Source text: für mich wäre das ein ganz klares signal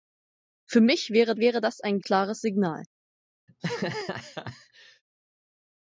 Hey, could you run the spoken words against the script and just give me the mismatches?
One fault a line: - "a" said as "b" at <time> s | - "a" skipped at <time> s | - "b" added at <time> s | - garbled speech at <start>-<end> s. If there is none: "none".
- "wäre" added at 1.4 s
- "ganz" skipped at 2.0 s